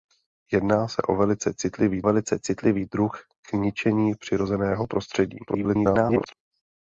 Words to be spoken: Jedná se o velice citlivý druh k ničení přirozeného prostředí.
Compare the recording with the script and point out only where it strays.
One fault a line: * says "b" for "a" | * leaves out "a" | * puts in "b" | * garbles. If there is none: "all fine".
* puts in "velice citlivý"
* garbles